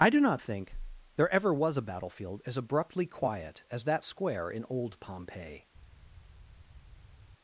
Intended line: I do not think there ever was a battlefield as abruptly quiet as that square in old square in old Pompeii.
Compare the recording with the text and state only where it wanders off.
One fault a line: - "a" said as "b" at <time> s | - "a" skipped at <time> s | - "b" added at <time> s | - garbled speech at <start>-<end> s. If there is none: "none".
- "square in old" skipped at 5.0 s